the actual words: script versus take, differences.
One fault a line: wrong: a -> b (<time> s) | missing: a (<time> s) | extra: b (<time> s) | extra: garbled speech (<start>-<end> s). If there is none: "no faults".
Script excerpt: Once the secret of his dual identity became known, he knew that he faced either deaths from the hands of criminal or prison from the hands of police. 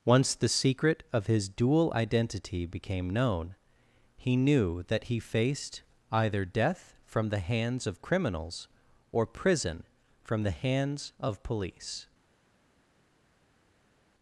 wrong: deaths -> death (6.4 s)
wrong: criminal -> criminals (8.0 s)